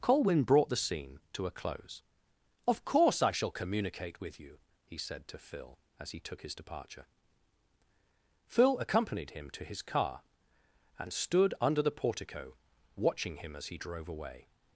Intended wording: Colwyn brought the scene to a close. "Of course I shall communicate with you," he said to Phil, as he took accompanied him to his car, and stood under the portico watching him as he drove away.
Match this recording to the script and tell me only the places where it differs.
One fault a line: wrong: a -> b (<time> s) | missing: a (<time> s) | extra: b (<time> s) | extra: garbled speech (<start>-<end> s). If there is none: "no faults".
extra: his departure Phil (6.4 s)